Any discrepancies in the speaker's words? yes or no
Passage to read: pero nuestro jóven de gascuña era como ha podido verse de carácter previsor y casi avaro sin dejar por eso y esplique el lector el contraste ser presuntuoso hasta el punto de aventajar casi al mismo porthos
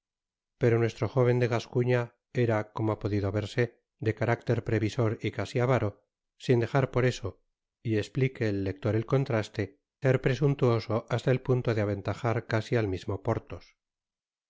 no